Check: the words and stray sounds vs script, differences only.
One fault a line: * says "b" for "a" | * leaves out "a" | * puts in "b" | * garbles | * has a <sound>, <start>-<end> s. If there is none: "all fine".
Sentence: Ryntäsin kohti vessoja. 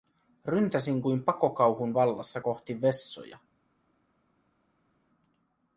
* puts in "kuin pakokauhun vallassa"